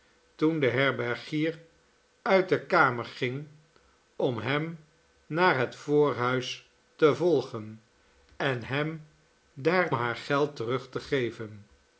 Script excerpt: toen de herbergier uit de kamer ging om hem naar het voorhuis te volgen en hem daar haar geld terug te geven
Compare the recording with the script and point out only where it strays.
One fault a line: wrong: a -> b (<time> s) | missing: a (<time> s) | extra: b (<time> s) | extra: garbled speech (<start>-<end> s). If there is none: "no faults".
no faults